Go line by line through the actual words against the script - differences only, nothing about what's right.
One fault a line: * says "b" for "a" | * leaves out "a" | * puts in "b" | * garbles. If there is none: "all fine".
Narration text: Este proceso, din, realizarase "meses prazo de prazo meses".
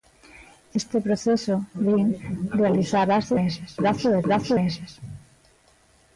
all fine